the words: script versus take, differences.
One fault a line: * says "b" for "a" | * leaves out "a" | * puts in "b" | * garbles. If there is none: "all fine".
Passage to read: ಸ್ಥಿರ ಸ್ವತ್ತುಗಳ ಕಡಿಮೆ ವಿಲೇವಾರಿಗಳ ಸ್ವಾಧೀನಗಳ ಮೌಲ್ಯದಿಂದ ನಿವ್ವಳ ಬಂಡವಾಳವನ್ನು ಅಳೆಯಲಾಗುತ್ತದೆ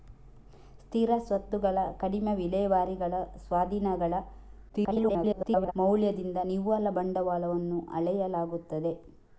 * garbles